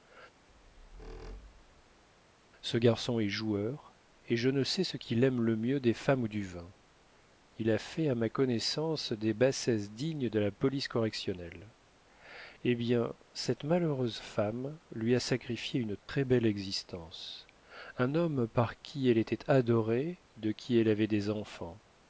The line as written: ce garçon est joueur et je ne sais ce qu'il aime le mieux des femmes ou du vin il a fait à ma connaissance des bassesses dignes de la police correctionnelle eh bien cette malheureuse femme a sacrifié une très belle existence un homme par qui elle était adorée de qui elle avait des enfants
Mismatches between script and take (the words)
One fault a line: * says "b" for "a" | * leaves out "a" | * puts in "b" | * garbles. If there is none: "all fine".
* puts in "lui"